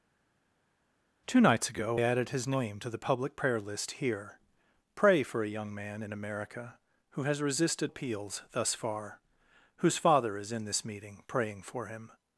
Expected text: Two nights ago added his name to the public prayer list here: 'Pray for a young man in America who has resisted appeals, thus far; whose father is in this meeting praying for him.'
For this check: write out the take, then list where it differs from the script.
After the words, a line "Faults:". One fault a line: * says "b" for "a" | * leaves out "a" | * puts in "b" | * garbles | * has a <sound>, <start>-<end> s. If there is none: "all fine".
Two nights ago added his name to the public prayer list here: 'Pray for a young man in America who has resisted appeals, thus far; whose father is in this meeting praying for him.'
Faults:
all fine